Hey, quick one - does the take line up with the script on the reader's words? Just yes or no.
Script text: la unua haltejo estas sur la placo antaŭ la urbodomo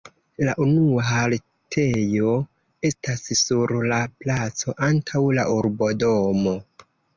yes